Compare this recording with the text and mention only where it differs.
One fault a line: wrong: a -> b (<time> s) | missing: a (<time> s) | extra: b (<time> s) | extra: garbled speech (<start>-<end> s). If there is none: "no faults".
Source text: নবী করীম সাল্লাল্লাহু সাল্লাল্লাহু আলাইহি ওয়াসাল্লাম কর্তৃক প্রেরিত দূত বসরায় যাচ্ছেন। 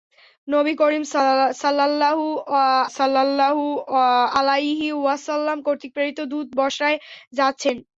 no faults